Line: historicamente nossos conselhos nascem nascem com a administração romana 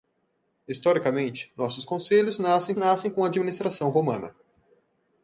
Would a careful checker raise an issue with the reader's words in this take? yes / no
no